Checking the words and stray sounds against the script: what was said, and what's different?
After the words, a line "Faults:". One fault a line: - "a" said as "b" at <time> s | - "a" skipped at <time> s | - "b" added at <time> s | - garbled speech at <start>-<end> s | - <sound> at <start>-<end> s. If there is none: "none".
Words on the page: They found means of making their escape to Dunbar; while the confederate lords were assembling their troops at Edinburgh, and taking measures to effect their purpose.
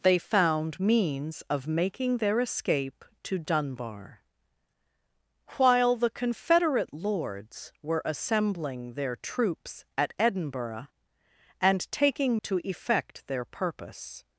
They found means of making their escape to Dunbar; while the confederate lords were assembling their troops at Edinburgh, and taking to effect their purpose.
Faults:
- "measures" skipped at 12.4 s